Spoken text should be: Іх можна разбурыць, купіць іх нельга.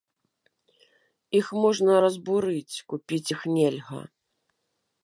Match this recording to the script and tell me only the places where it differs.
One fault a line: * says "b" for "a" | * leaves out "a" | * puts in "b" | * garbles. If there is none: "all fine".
all fine